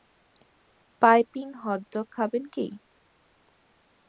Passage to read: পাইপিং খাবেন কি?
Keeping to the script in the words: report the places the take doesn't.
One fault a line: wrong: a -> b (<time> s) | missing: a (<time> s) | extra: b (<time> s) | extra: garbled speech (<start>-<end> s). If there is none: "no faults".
extra: হট ডগ (1.6 s)